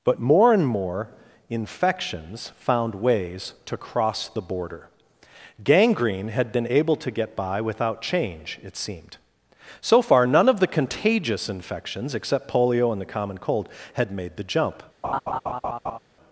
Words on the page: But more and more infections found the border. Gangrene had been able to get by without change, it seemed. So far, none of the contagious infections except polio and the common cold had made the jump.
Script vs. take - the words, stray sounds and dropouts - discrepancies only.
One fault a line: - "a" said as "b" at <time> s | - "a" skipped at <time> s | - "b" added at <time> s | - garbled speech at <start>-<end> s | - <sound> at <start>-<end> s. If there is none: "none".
- "ways to cross" added at 3.0 s
- laugh at 15.0-16.0 s